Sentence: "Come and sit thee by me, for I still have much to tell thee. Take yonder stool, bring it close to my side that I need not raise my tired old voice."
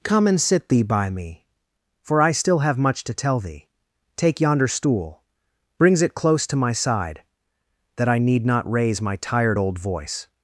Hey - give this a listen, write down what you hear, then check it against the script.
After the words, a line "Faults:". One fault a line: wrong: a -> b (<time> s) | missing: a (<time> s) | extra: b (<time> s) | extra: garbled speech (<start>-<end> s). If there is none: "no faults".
"Come and sit thee by me, for I still have much to tell thee. Take yonder stool, brings it close to my side that I need not raise my tired old voice."
Faults:
wrong: bring -> brings (5.8 s)